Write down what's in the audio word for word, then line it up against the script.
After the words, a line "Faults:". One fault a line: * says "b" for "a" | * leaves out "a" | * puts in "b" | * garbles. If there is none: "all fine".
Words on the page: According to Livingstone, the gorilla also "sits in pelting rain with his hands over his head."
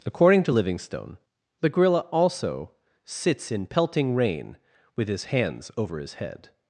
According to Livingstone, the gorilla also "sits in pelting rain with his hands over his head."
Faults:
all fine